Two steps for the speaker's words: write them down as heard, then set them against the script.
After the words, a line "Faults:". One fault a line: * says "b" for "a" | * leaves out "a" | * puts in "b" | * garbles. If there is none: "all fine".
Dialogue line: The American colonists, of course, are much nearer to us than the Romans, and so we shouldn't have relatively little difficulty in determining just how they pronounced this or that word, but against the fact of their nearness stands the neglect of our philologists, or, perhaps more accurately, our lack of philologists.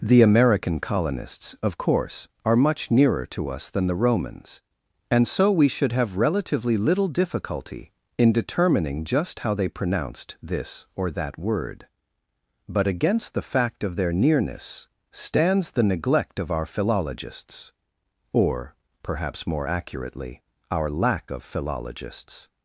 The American colonists, of course, are much nearer to us than the Romans, and so we should have relatively little difficulty in determining just how they pronounced this or that word, but against the fact of their nearness stands the neglect of our philologists, or, perhaps more accurately, our lack of philologists.
Faults:
* says "should" for "shouldn't"